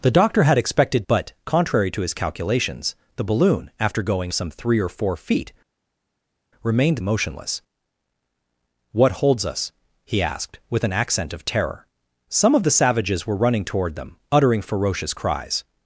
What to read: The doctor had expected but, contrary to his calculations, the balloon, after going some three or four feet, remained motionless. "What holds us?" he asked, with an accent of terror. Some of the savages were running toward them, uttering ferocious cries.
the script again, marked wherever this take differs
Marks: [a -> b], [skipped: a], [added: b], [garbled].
The doctor had expected but, contrary to his calculations, the balloon, after going some three or four feet, remained motionless. "What holds us?" he asked, with an accent of terror. Some of the savages were running toward them, uttering ferocious cries.